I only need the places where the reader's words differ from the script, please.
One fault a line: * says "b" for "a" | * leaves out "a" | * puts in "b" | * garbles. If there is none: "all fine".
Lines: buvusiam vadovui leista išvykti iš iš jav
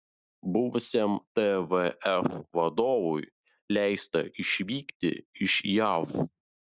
* puts in "tvf"
* leaves out "iš"